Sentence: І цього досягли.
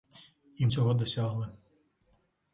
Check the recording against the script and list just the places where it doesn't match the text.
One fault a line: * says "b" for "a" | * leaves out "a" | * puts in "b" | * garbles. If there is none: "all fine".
all fine